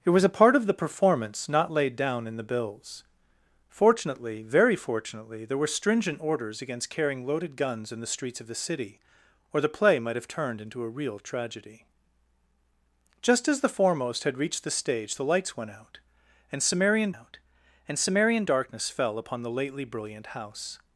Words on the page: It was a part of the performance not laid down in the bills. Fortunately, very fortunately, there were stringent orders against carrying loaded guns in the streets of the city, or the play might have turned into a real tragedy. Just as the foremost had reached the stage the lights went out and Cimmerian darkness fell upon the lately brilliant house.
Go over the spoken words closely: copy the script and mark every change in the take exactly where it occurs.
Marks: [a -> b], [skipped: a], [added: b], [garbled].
It was a part of the performance not laid down in the bills. Fortunately, very fortunately, there were stringent orders against carrying loaded guns in the streets of the city, or the play might have turned into a real tragedy. Just as the foremost had reached the stage the lights went out and Cimmerian [added: out and Cimmerian] darkness fell upon the lately brilliant house.